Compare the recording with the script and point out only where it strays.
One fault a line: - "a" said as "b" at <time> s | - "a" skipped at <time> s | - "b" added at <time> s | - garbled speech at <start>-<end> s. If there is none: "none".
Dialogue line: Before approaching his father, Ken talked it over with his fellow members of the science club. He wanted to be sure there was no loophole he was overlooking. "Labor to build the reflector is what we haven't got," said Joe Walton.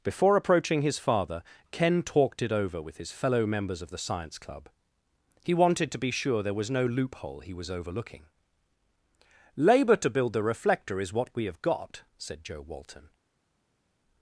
- "haven't" said as "have" at 11.4 s